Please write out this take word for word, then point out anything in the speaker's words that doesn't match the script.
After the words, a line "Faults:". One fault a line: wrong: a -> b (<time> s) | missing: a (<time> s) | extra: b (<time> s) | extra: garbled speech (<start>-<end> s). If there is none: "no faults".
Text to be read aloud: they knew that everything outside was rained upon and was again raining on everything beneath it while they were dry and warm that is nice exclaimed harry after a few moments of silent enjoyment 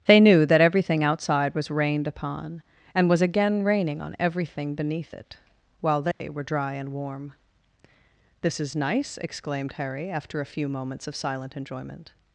they knew that everything outside was rained upon and was again raining on everything beneath it while they were dry and warm this is nice exclaimed harry after a few moments of silent enjoyment
Faults:
wrong: that -> this (8.4 s)